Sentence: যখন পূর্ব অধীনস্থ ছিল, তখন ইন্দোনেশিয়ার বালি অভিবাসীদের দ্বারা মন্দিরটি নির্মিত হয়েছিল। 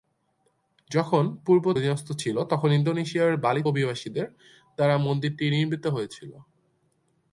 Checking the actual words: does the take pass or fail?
pass